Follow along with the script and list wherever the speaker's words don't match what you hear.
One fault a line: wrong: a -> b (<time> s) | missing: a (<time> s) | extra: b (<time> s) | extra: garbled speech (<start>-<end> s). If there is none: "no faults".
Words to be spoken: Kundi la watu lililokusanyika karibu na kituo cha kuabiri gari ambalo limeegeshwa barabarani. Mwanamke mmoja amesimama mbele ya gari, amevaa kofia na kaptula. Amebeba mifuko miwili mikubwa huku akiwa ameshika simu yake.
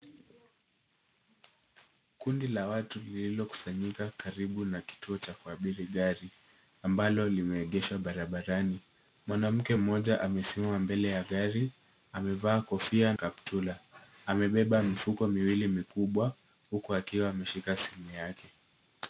missing: na (13.1 s)